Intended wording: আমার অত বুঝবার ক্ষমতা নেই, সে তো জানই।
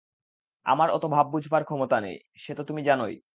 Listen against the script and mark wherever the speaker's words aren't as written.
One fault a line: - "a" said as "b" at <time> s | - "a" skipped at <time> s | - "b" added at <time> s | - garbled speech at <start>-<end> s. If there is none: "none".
- "ভাব" added at 1.1 s
- "তুমি" added at 2.6 s